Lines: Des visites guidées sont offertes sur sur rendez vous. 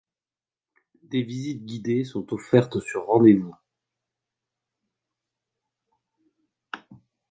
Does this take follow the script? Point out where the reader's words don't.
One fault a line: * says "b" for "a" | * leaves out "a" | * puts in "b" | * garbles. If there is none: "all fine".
* leaves out "sur"